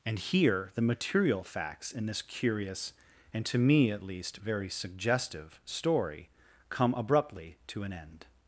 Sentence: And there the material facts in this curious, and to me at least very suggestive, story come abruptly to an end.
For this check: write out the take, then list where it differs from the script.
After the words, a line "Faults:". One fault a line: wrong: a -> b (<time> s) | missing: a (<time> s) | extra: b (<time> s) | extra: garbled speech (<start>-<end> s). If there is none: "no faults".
And here the material facts in this curious, and to me at least very suggestive, story come abruptly to an end.
Faults:
wrong: there -> here (0.2 s)